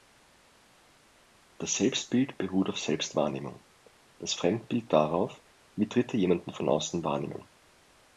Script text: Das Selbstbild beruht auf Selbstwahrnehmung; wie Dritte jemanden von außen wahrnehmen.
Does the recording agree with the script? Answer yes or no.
no